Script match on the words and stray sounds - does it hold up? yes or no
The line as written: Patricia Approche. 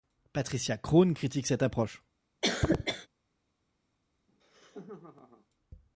no